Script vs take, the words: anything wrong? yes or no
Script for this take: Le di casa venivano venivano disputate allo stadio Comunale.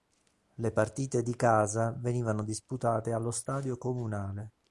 yes